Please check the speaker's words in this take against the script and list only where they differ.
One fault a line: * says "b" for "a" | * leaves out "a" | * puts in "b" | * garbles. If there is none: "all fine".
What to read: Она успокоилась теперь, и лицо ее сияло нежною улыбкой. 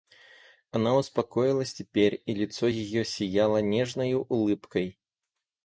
all fine